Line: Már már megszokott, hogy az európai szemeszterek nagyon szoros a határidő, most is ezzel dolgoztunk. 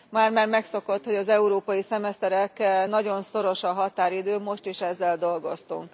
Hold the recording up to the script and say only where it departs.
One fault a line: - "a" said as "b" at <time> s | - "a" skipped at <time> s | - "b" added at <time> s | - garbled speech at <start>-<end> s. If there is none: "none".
none